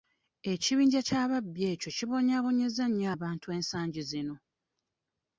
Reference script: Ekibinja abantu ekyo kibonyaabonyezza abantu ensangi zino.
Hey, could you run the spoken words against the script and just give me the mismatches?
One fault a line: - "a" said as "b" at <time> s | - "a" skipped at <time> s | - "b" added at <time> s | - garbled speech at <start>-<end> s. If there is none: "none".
- "abantu" said as "ky'ababbi" at 1.1 s
- "nnyo" added at 2.9 s